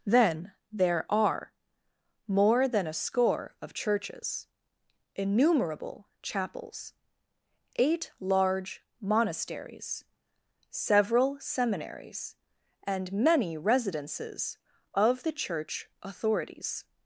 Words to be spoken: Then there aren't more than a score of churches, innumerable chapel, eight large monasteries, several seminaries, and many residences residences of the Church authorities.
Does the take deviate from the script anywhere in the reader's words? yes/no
yes